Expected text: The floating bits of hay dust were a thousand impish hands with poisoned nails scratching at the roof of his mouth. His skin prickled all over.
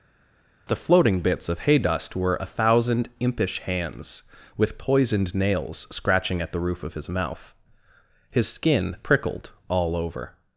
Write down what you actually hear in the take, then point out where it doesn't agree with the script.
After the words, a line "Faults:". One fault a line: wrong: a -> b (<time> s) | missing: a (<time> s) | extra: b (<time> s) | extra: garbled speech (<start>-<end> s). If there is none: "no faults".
The floating bits of hay dust were a thousand impish hands with poisoned nails scratching at the roof of his mouth. His skin prickled all over.
Faults:
no faults